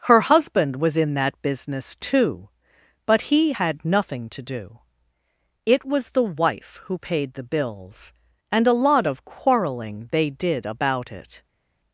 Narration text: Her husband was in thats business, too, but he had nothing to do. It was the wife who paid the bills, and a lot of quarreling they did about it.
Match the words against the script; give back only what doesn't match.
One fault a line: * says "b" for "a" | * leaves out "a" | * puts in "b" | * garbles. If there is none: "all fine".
* says "that" for "thats"